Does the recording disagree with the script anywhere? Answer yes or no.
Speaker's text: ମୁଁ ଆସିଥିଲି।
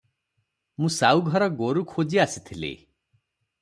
yes